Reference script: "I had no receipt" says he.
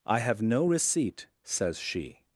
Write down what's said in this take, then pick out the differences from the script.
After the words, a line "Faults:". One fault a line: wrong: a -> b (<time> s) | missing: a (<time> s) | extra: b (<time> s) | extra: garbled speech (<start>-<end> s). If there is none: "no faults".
"I have no receipt" says she.
Faults:
wrong: had -> have (0.2 s)
wrong: he -> she (1.8 s)